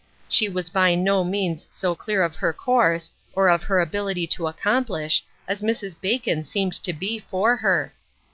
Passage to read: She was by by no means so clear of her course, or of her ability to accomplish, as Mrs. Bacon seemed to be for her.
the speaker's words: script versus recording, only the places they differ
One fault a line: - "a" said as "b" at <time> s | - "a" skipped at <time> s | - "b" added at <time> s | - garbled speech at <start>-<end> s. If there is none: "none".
- "by" skipped at 0.9 s